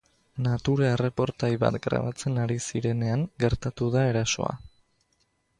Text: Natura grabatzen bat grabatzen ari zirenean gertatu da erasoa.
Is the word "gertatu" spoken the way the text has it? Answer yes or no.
yes